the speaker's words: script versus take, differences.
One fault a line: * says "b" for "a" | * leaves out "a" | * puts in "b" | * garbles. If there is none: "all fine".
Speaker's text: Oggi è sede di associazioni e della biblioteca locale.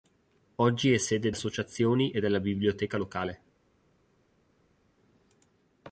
* leaves out "di"